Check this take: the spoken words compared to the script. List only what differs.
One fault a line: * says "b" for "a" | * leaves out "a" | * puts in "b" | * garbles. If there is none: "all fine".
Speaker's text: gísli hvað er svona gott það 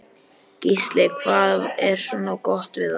* puts in "við"